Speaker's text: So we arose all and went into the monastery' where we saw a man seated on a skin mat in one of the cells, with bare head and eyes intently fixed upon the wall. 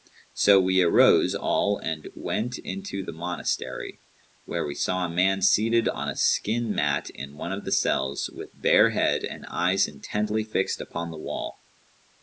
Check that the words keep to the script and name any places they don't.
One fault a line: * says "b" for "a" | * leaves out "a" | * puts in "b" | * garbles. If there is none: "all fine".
all fine